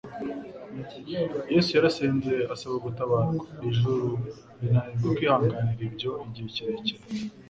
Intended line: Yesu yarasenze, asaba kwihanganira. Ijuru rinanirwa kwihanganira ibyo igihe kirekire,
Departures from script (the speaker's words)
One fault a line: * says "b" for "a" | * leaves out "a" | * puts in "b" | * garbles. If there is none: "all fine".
* says "gutabarwa" for "kwihanganira"